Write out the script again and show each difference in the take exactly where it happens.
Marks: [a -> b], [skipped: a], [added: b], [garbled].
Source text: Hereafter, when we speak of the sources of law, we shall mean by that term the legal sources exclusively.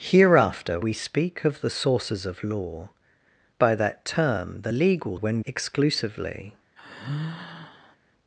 Hereafter, [skipped: when] we speak of the sources of law, [skipped: we shall mean] by that term the legal [sources -> when] exclusively.